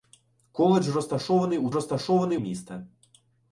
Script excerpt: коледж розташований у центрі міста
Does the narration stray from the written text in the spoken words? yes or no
yes